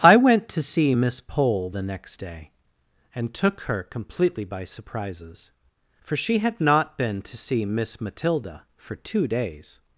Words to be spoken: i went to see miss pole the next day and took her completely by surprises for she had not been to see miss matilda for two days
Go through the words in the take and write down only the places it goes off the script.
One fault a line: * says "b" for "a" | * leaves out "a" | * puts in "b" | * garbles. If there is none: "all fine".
all fine